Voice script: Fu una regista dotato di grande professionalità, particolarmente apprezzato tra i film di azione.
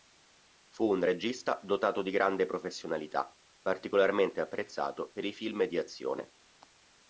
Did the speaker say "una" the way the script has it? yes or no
no